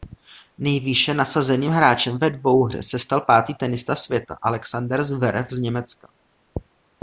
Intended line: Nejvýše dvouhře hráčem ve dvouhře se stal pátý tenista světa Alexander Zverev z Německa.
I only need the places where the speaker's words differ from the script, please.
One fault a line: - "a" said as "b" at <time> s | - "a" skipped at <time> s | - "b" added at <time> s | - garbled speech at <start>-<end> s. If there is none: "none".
- "dvouhře" said as "nasazeným" at 1.1 s